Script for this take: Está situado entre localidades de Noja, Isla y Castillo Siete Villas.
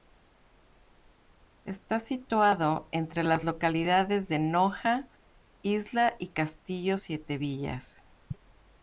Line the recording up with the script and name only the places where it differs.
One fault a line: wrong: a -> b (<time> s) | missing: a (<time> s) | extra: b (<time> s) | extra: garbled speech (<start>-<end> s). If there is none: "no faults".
extra: las (3.2 s)